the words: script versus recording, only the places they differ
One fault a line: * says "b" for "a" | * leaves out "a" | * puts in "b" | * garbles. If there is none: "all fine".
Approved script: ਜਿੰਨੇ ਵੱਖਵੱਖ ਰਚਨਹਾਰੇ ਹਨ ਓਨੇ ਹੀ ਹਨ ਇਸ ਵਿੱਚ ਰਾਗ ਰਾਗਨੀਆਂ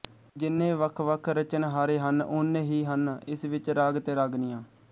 * puts in "ਤੇ"